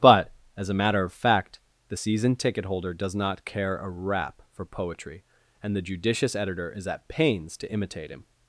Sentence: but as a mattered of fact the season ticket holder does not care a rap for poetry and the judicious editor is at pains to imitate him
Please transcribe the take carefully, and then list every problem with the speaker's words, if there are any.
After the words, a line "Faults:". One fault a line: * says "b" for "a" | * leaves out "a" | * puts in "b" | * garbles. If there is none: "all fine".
but as a matter of fact the season ticket holder does not care a rap for poetry and the judicious editor is at pains to imitate him
Faults:
* says "matter" for "mattered"